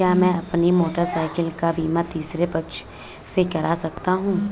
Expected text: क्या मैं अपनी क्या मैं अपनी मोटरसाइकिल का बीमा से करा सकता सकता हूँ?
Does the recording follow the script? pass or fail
fail